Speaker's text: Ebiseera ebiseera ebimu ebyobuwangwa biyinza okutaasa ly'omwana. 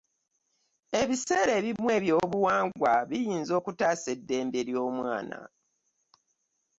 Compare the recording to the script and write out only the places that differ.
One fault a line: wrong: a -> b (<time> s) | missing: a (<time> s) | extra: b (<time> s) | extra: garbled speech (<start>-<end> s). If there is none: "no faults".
missing: ebiseera (1.5 s)
extra: eddembe (4.1 s)